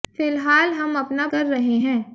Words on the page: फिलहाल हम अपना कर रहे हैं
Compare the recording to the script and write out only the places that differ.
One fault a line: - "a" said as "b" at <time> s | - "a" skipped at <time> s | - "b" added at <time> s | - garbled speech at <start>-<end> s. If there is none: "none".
none